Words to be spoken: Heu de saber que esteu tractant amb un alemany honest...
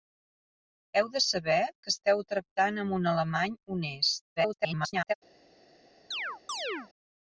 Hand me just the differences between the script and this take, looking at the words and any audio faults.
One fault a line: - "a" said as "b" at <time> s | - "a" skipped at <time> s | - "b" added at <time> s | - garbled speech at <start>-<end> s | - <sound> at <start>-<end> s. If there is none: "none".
- garbled speech at 4.4-5.1 s
- chirp at 6.1-6.9 s